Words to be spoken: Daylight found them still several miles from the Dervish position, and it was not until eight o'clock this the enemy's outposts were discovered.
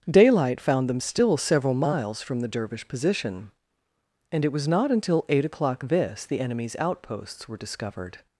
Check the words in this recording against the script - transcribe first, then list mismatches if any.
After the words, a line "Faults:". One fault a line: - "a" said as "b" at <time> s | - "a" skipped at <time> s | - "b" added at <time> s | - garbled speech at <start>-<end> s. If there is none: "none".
Daylight found them still several miles from the Dervish position, and it was not until eight o'clock this the enemy's outposts were discovered.
Faults:
none